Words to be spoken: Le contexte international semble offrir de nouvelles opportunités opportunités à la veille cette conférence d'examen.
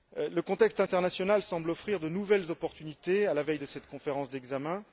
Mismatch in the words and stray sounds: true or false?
true